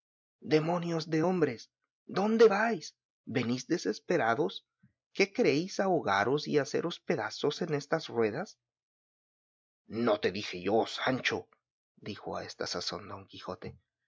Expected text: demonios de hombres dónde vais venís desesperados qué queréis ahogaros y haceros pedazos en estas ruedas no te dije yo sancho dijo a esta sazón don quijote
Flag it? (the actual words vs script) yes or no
no